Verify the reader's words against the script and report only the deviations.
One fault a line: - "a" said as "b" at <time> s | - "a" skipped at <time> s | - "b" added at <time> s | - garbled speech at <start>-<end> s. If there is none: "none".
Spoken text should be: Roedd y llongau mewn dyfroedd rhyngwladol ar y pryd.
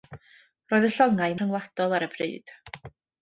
- "mewn dyfroedd" skipped at 1.4 s